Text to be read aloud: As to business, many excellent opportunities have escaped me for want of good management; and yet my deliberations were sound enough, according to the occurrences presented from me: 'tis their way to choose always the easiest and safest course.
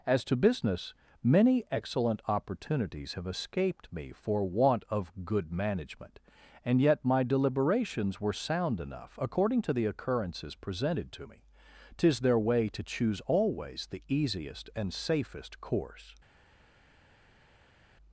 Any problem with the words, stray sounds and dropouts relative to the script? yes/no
yes